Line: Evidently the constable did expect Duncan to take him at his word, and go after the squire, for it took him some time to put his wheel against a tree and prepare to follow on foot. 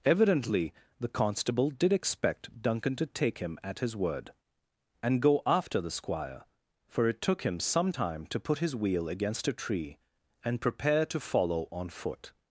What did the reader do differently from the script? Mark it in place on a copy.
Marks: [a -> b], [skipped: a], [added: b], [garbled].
Evidently the constable did expect Duncan to take him at his word, and go after the squire, for it took him some time to put his wheel against a tree and prepare to follow on foot.